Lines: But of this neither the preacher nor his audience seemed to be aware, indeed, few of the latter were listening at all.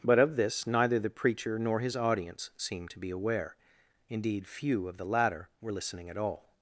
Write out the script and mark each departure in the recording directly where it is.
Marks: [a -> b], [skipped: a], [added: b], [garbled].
But of this neither the preacher nor his audience seemed to be aware, indeed, few of the latter were listening at all.